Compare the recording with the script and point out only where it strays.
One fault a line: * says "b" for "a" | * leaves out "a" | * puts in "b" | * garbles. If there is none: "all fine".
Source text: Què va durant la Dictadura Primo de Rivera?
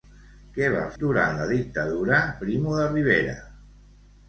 all fine